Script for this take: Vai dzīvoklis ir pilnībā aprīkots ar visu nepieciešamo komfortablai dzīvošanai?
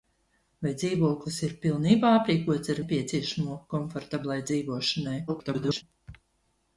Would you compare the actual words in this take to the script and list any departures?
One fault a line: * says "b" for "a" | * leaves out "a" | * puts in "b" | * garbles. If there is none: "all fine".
* leaves out "visu"
* garbles